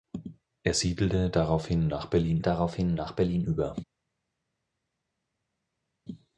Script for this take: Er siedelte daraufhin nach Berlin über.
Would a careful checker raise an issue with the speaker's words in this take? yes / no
yes